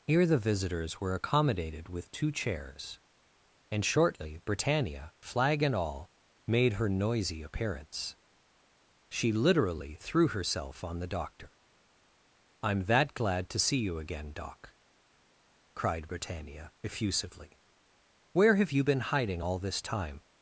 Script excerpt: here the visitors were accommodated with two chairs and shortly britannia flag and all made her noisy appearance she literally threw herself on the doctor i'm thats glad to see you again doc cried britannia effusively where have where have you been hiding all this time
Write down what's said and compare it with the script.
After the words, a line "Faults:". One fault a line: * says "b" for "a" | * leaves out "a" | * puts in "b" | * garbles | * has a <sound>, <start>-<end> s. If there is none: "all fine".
here the visitors were accommodated with two chairs and shortly britannia flag and all made her noisy appearance she literally threw herself on the doctor i'm that glad to see you again doc cried britannia effusively where have you been hiding all this time
Faults:
* says "that" for "thats"
* leaves out "where have"